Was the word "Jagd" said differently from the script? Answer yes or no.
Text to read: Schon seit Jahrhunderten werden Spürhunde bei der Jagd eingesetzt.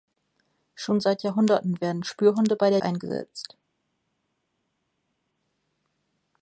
yes